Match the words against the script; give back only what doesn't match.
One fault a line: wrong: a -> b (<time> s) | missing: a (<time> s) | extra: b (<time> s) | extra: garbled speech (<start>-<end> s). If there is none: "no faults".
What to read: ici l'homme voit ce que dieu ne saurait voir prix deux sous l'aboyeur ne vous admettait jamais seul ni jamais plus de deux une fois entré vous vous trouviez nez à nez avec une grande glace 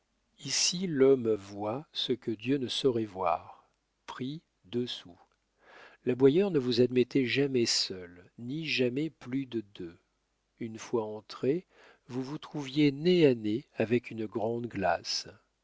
no faults